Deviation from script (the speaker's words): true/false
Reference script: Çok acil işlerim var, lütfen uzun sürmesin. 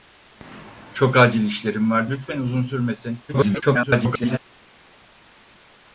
true